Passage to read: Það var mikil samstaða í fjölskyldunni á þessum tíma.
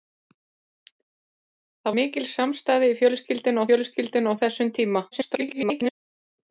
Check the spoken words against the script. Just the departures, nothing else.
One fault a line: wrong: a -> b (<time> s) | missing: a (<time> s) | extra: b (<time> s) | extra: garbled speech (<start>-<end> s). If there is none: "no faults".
missing: var (1.9 s)
extra: fjölskyldunni (3.7 s)
extra: garbled speech (5.1-5.9 s)